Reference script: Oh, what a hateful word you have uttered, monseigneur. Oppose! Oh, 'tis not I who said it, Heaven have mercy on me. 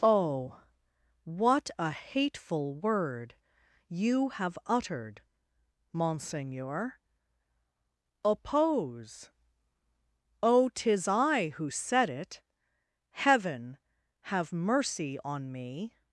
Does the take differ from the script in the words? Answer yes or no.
yes